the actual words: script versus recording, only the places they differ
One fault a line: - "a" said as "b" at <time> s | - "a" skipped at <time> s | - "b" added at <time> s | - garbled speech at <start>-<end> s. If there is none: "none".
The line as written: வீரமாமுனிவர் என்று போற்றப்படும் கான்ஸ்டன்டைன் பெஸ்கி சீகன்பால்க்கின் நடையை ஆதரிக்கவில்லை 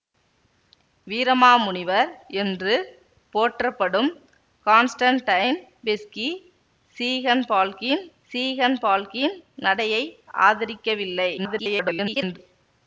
- "சீகன்பால்க்கின்" added at 8.3 s
- garbled speech at 11.4-12.4 s